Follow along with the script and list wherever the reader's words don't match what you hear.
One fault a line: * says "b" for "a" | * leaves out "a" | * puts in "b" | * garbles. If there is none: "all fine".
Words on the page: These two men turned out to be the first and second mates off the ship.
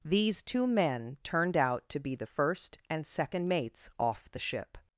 all fine